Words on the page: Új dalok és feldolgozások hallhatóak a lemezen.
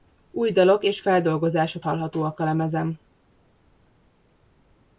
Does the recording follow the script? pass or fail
pass